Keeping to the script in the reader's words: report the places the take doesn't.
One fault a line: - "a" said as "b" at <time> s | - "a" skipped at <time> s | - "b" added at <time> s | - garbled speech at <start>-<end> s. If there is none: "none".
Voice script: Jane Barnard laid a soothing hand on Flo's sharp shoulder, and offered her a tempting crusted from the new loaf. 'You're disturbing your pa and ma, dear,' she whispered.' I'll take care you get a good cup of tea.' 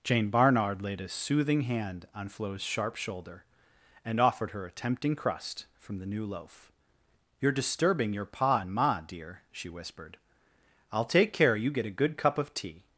- "crusted" said as "crust" at 5.2 s